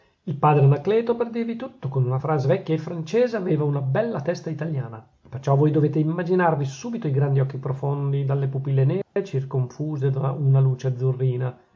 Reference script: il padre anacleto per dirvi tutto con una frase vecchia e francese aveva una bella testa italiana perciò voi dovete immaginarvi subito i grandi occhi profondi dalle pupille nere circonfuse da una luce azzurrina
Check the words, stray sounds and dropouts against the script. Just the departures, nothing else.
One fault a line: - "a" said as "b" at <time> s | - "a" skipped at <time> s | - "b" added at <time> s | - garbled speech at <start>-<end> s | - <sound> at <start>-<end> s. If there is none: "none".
- dropout at 9.0-9.2 s